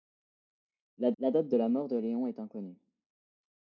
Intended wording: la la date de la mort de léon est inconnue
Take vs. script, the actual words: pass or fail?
pass